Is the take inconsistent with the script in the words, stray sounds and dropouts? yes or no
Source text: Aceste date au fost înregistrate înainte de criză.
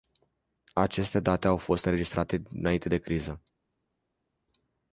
no